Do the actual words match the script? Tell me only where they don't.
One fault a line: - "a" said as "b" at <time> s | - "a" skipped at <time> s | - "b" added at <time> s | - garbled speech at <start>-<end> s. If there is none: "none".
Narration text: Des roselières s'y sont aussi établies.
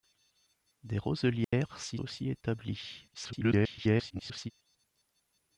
- "sont" skipped at 2.0 s
- garbled speech at 3.1-4.5 s